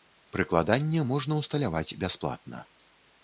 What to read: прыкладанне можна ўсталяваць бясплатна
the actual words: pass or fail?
pass